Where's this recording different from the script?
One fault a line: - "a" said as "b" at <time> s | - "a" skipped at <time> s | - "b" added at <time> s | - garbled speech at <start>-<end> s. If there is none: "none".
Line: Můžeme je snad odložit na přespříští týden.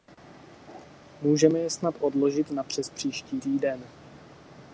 none